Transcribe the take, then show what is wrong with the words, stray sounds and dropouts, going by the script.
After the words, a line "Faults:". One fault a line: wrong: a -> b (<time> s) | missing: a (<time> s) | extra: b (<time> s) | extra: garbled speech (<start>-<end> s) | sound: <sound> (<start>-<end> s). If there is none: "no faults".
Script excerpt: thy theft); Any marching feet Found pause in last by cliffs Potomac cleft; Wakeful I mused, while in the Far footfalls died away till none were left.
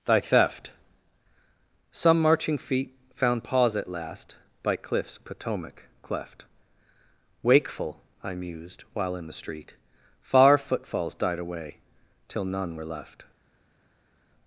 thy theft); Some marching feet Found pause at last by cliffs Potomac cleft; Wakeful I mused, while in the street Far footfalls died away till none were left.
Faults:
wrong: Any -> Some (1.9 s)
wrong: in -> at (3.8 s)
extra: street (9.3 s)